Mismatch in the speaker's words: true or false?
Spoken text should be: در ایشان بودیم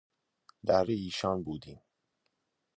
false